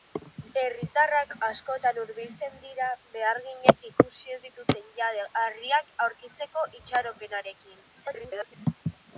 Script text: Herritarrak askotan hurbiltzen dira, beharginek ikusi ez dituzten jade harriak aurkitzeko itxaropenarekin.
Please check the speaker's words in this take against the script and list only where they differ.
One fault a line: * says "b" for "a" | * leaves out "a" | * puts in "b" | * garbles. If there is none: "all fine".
* garbles